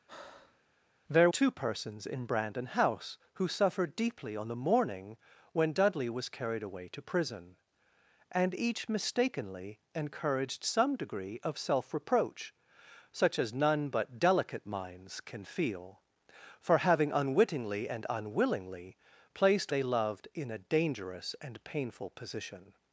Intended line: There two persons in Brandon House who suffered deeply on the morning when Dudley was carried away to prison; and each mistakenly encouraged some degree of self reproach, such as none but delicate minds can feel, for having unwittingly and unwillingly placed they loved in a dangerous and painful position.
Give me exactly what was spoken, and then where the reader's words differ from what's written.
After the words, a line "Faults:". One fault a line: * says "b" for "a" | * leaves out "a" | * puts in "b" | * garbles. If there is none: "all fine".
There two persons in Brandon House who suffered deeply on the morning when Dudley was carried away to prison; and each mistakenly encouraged some degree of self reproach, such as none but delicate minds can feel, for having unwittingly and unwillingly placed they loved in a dangerous and painful position.
Faults:
all fine